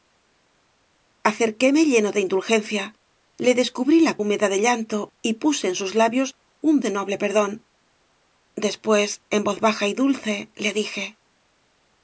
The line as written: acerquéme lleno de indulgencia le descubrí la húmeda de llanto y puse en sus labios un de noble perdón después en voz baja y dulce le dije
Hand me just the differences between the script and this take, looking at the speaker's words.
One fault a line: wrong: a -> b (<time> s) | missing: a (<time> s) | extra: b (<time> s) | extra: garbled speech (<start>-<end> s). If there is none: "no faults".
no faults